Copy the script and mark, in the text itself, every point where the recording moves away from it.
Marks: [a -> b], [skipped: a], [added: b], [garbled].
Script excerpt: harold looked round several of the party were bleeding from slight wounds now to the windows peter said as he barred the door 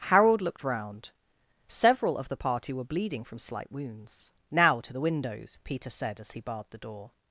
harold looked round several of the party were bleeding from slight wounds now to the windows peter said as he barred the door